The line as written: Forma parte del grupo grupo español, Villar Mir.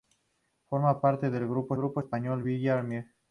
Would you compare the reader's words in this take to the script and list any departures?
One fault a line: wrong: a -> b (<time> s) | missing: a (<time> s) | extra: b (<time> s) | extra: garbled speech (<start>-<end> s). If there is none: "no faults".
no faults